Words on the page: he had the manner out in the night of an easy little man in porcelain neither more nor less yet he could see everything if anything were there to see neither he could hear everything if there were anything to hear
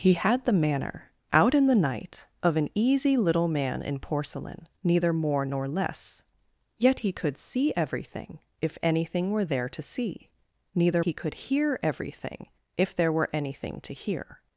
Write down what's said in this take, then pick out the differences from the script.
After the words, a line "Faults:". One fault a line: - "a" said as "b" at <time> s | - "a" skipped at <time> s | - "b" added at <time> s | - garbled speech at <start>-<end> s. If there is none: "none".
he had the manner out in the night of an easy little man in porcelain neither more nor less yet he could see everything if anything were there to see neither he could hear everything if there were anything to hear
Faults:
none